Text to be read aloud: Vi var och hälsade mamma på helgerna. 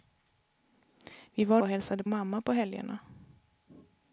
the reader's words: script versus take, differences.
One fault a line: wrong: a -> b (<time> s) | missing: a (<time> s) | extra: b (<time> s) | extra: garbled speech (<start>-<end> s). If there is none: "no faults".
no faults